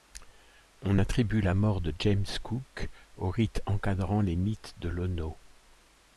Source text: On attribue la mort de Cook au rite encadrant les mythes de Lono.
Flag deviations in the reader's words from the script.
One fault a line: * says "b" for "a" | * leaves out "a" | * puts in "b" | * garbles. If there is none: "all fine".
* puts in "James"